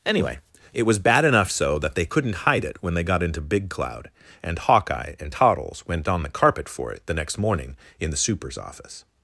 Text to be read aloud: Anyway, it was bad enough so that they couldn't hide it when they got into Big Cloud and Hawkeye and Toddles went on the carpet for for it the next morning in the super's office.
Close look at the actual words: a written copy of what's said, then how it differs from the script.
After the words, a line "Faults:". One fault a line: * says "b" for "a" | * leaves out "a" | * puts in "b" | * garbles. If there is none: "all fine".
Anyway, it was bad enough so that they couldn't hide it when they got into Big Cloud and Hawkeye and Toddles went on the carpet for it the next morning in the super's office.
Faults:
* leaves out "for"